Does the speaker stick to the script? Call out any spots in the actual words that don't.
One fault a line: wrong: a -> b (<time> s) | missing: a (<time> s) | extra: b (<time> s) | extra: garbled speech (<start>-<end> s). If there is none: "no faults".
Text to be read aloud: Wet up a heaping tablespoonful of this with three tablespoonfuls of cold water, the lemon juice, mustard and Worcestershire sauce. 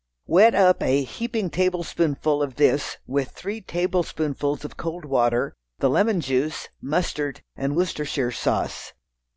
no faults